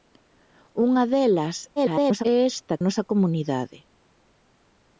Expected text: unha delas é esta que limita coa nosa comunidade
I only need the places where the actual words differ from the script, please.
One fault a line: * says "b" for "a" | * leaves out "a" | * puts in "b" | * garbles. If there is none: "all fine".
* garbles
* leaves out "que limita coa"